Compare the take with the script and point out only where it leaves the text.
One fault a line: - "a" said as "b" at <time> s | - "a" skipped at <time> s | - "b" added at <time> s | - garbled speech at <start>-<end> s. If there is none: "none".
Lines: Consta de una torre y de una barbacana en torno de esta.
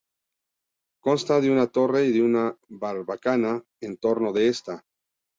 none